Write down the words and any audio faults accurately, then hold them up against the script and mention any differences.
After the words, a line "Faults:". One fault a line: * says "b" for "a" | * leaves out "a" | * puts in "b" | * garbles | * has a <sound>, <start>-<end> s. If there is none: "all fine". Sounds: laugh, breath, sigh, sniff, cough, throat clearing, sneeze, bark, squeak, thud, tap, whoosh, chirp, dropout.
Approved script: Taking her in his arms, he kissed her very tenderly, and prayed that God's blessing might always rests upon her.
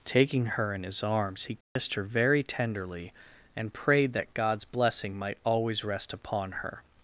Taking her in his arms, he kissed her very tenderly, and prayed that God's blessing might always rest upon her.
Faults:
* has a dropout, 1.6-1.8 s
* says "rest" for "rests"